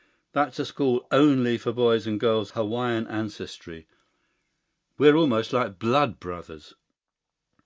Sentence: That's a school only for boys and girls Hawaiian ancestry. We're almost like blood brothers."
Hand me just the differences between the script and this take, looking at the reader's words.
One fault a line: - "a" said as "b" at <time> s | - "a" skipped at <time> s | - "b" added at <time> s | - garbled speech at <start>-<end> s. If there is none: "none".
none